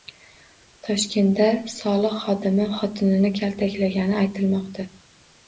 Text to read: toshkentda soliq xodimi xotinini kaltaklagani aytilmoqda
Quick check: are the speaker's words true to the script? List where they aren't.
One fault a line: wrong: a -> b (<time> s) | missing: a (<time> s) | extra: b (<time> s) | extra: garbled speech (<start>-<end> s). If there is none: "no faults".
no faults